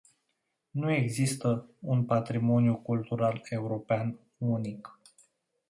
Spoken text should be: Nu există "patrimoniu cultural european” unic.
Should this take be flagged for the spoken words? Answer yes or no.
yes